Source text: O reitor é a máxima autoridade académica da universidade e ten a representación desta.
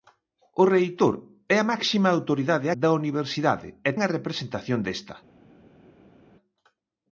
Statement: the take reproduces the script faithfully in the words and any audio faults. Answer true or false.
false